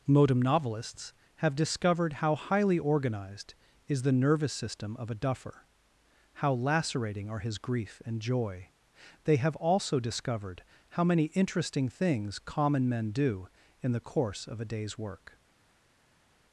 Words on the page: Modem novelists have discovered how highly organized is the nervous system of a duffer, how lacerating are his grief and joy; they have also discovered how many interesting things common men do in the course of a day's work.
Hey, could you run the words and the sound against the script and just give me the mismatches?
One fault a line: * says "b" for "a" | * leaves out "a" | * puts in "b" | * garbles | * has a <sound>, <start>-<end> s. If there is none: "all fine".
all fine